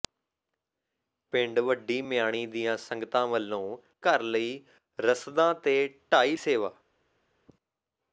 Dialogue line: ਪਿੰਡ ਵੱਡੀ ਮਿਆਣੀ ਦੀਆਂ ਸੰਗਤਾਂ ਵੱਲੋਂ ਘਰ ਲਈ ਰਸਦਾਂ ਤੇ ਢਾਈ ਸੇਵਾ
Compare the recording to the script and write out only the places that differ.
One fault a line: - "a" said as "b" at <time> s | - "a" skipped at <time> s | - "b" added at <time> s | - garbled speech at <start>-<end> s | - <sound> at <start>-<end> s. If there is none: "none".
none